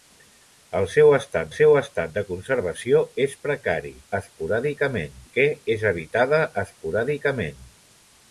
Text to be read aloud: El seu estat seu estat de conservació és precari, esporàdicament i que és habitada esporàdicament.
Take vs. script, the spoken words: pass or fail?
pass